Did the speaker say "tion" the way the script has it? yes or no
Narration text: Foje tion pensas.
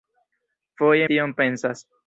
yes